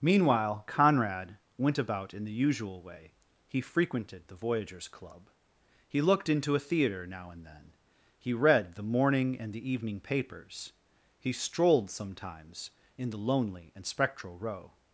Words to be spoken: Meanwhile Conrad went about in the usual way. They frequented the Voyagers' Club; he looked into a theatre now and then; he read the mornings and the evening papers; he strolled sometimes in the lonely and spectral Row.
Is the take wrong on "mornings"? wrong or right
wrong